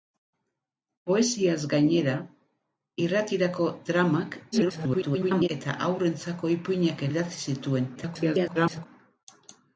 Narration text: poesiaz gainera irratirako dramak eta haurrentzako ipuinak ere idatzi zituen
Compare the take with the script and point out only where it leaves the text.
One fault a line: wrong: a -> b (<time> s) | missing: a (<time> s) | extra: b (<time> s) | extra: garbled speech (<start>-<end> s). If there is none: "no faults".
extra: garbled speech (4.5-5.5 s)
missing: ere (7.0 s)
extra: garbled speech (8.0-8.9 s)